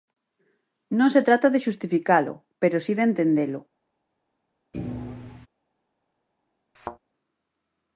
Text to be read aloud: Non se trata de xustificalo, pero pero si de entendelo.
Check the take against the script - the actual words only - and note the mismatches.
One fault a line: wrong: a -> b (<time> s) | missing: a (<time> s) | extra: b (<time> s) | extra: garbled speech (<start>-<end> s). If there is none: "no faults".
missing: pero (2.8 s)